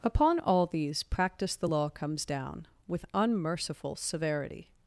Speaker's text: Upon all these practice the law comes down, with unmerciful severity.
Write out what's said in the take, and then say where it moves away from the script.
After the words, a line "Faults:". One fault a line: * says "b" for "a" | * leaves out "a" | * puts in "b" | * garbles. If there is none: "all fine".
Upon all these practice the law comes down, with unmerciful severity.
Faults:
all fine